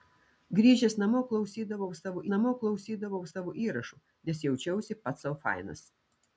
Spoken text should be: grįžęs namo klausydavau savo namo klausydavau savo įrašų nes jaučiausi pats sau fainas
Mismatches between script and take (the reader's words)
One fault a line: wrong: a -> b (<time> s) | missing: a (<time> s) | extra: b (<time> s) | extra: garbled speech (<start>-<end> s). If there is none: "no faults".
no faults